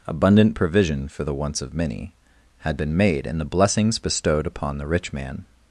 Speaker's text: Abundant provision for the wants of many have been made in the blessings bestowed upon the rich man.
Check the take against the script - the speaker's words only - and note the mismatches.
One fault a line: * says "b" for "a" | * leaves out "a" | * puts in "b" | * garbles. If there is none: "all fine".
* says "had" for "have"